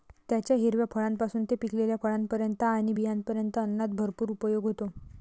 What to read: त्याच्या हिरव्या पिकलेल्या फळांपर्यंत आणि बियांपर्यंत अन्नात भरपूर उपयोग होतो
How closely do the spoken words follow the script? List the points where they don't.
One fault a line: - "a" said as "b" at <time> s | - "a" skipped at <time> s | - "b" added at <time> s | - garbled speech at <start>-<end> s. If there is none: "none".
- "फळांपासून ते" added at 0.9 s